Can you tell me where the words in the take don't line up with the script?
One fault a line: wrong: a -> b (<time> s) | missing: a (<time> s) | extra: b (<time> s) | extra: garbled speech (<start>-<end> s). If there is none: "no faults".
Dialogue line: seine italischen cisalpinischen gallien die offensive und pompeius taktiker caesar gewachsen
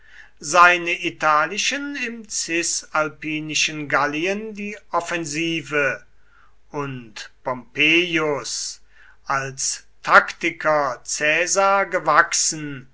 extra: im (1.9 s)
extra: als (9.2 s)